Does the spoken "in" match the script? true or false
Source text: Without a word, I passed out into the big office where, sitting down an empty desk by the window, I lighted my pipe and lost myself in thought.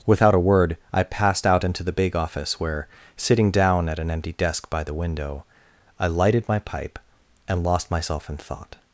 true